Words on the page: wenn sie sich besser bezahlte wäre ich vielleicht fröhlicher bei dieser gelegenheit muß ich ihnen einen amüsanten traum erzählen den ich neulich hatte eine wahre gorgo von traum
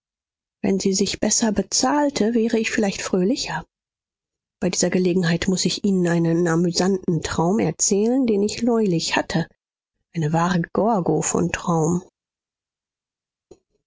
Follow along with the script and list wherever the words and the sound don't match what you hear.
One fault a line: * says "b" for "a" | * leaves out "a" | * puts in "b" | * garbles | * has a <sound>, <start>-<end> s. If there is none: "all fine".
all fine